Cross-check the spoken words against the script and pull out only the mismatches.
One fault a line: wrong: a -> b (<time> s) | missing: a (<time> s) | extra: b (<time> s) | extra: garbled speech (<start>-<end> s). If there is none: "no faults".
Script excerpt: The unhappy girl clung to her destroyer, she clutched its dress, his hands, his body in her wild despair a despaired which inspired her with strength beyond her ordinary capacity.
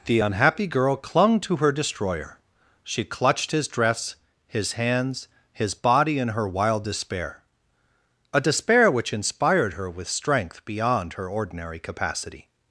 wrong: its -> his (3.5 s)
wrong: despaired -> despair (8.4 s)